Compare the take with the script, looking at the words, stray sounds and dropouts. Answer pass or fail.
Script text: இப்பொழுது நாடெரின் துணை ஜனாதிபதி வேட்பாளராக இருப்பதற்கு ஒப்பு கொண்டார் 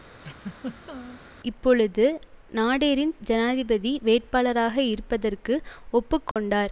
fail